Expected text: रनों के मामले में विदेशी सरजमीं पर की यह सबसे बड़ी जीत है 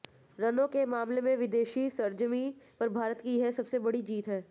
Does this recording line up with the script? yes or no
no